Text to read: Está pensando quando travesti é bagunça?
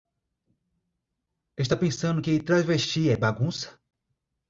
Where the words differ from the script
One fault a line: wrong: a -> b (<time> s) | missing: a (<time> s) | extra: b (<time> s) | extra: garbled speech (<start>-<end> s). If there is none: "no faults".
wrong: quando -> que (2.2 s)